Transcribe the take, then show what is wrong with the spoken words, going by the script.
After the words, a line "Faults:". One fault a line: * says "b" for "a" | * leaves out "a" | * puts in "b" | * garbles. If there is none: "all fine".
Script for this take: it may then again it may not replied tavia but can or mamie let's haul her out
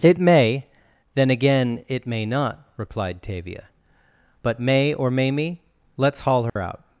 it may then again it may not replied tavia but may or mamie let's haul her out
Faults:
* says "may" for "can"